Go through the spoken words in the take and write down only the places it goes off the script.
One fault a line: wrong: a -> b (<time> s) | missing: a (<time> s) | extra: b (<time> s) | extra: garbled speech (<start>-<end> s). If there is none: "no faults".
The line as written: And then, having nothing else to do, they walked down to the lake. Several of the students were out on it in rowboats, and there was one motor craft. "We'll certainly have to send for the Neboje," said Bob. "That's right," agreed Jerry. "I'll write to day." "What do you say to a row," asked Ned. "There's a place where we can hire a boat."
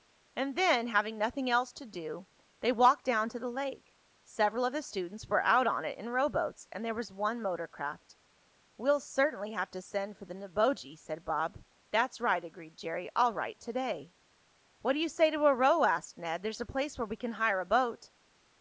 no faults